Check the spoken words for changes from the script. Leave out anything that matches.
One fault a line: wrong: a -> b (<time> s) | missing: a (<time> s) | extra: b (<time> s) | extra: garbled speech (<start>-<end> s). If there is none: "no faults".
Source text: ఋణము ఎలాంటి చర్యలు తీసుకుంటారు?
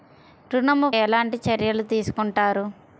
no faults